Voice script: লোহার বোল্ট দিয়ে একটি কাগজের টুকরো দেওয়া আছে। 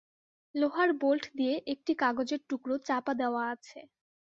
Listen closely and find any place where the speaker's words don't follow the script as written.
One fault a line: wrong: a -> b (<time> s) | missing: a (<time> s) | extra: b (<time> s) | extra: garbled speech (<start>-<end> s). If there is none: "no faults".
extra: চাপা (2.9 s)